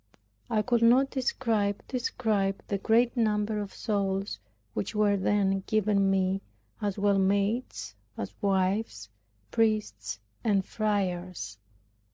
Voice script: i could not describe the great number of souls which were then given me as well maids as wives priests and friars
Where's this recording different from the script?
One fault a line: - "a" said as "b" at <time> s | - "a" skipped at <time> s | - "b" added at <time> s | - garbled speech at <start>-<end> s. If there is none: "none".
- "describe" added at 1.9 s